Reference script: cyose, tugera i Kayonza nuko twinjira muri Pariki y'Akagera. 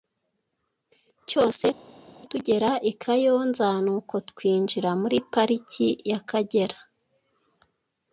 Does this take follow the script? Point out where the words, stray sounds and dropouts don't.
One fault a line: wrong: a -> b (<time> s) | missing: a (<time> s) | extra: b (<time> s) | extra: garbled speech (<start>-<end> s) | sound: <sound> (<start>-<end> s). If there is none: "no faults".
no faults